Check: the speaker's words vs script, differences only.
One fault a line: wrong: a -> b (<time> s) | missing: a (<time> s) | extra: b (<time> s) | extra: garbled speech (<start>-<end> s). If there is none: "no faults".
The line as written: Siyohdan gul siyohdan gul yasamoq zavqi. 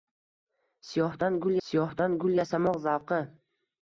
no faults